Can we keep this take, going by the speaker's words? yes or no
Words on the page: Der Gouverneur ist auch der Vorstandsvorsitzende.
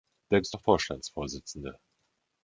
no